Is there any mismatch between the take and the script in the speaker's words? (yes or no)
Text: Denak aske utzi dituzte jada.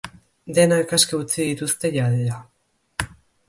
no